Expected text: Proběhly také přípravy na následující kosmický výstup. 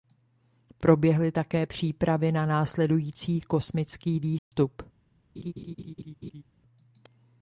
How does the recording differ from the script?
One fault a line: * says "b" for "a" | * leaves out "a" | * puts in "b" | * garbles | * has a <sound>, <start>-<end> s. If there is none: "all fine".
* has a dropout, 4.4-4.5 s
* has a laugh, 5.4-6.4 s